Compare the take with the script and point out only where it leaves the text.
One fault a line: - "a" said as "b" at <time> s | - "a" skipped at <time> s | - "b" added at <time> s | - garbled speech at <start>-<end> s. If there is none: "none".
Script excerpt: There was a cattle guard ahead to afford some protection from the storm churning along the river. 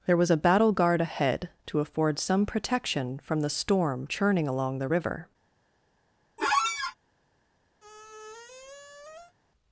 - "cattle" said as "battle" at 0.4 s